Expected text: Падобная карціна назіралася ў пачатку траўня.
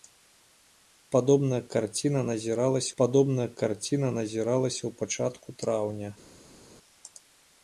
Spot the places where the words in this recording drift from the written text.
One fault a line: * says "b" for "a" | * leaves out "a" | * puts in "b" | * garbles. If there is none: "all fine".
* puts in "падобная карціна назіралася"